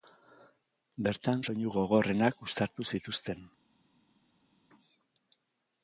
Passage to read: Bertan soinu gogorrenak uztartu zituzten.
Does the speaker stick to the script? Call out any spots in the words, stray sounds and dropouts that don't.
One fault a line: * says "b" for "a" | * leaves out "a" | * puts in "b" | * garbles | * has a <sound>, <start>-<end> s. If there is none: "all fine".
all fine